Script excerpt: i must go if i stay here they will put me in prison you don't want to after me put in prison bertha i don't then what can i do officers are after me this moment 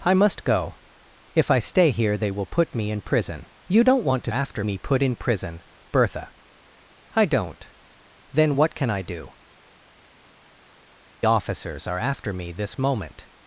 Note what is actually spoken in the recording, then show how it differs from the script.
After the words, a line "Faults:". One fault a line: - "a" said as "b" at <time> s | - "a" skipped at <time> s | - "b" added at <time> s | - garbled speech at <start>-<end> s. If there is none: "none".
i must go if i stay here they will put me in prison you don't want to after me put in prison bertha i don't then what can i do officers are after me this moment
Faults:
none